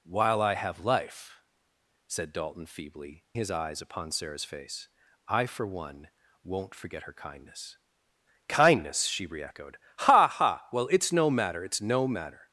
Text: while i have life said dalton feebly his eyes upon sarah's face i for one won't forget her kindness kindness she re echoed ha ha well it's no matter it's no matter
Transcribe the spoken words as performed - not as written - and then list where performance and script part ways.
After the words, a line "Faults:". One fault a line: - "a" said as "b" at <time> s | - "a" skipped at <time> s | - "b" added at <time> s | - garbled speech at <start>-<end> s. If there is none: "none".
while i have life said dalton feebly his eyes upon sarah's face i for one won't forget her kindness kindness she re echoed ha ha well it's no matter it's no matter
Faults:
none